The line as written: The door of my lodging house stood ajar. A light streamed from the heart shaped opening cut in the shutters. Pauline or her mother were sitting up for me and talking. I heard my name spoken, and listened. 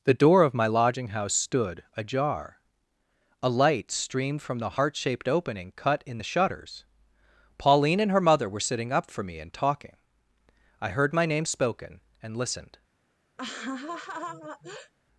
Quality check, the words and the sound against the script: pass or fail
fail